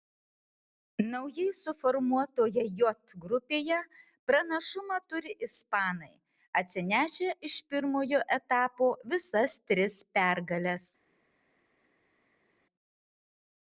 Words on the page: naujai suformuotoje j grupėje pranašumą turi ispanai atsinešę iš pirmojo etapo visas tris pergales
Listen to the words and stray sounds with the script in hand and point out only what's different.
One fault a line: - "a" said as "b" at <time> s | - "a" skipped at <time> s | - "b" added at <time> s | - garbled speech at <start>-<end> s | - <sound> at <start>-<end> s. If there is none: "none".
none